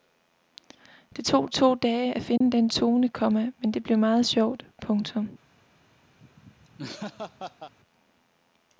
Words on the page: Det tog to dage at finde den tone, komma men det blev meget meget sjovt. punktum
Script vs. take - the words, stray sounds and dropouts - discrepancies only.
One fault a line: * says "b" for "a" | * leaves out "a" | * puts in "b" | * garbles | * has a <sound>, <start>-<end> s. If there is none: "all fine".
* has a dropout, 2.4-2.4 s
* leaves out "meget"
* has a laugh, 6.2-7.7 s